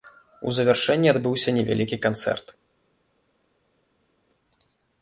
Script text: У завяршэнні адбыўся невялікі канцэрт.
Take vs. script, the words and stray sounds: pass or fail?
pass